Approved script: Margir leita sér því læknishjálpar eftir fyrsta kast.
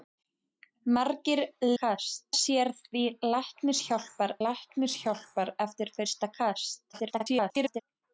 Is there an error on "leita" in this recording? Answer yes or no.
yes